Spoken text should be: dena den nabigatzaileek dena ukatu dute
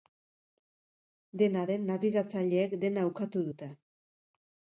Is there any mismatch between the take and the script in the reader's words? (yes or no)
no